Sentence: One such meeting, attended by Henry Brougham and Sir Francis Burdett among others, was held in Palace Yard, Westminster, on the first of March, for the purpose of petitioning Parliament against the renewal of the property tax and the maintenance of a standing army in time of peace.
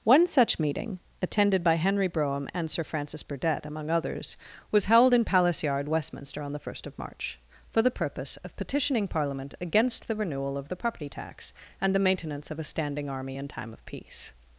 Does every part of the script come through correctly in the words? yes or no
yes